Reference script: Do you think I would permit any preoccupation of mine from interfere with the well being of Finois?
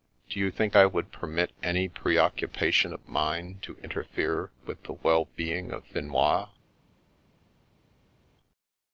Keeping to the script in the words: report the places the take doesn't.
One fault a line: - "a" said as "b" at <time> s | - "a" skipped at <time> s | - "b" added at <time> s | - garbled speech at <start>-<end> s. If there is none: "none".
- "from" said as "to" at 3.6 s